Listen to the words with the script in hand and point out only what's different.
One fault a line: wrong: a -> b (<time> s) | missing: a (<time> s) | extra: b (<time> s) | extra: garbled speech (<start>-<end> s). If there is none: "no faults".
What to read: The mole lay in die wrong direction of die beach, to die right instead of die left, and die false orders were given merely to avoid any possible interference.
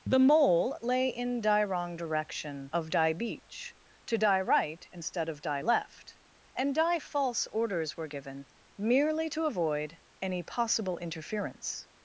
no faults